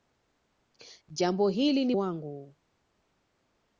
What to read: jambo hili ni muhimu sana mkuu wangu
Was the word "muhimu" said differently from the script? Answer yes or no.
yes